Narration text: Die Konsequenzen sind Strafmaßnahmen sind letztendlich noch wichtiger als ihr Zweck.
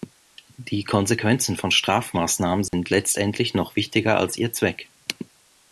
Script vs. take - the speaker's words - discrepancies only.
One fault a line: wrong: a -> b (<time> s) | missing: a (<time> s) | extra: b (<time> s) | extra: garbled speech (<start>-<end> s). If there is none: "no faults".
wrong: sind -> von (1.6 s)